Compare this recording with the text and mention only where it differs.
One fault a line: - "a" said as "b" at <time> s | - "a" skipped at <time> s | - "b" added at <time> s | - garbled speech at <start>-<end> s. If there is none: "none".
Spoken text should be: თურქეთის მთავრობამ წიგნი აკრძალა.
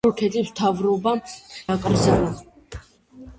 - "წიგნი" skipped at 1.2 s